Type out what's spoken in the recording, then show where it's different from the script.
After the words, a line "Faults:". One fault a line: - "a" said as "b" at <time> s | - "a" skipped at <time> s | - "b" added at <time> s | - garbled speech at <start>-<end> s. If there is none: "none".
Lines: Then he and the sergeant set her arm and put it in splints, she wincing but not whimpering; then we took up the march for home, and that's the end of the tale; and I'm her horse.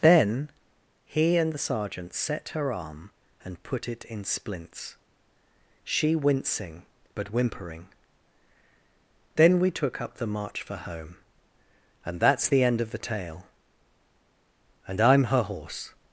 Then he and the sergeant set her arm and put it in splints, she wincing but whimpering; then we took up the march for home, and that's the end of the tale; and I'm her horse.
Faults:
- "not" skipped at 7.3 s